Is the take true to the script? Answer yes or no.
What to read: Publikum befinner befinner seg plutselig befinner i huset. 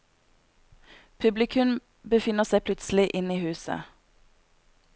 no